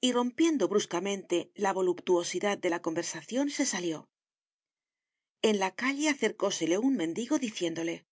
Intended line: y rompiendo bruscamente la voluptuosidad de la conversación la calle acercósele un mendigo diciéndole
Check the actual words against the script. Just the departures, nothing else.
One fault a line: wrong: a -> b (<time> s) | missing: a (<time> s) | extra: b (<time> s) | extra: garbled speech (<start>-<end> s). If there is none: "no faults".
extra: se salió en (3.5 s)